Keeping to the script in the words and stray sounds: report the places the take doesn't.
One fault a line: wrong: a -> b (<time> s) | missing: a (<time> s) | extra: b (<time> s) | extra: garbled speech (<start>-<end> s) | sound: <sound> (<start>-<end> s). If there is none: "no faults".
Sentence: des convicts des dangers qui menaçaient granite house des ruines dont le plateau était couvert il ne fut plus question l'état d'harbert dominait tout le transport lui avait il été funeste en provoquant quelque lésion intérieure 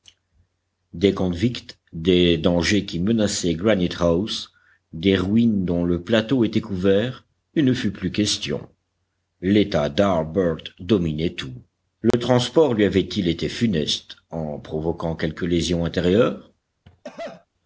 sound: dropout (12.1-12.1 s)
sound: cough (16.8-17.5 s)